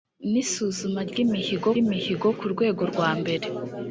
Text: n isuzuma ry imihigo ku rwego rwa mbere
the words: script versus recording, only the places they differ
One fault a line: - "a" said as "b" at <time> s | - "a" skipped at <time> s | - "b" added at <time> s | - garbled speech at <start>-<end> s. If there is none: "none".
- "imihigo" added at 1.8 s